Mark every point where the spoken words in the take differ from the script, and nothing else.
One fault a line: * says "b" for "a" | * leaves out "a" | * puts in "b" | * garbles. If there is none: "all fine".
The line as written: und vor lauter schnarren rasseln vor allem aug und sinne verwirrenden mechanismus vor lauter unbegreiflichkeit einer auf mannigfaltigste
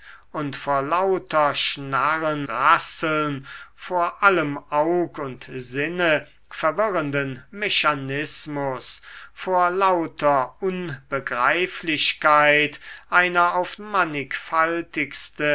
all fine